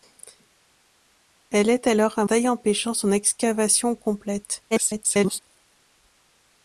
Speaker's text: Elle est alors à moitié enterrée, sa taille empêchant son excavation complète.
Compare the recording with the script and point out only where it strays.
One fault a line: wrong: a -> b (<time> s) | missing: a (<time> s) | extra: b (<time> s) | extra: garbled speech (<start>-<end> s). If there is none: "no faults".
missing: moitié enterrée sa (2.2 s)
extra: garbled speech (4.7-5.4 s)